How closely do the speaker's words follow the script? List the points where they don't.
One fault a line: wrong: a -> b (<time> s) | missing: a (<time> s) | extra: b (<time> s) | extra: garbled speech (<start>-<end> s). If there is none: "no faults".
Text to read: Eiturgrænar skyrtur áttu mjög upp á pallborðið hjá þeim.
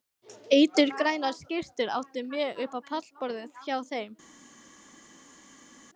no faults